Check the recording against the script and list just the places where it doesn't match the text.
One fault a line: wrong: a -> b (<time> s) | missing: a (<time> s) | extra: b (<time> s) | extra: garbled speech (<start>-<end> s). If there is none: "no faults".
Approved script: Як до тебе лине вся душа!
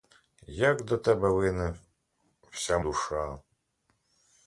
no faults